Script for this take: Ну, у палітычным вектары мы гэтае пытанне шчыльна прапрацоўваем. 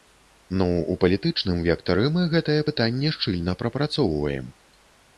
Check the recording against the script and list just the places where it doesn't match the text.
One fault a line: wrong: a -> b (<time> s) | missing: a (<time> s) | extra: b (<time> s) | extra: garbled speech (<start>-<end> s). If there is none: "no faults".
no faults